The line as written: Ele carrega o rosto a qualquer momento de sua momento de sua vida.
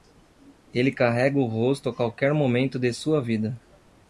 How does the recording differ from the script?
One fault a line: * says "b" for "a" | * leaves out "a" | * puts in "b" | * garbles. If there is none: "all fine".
* leaves out "momento de sua"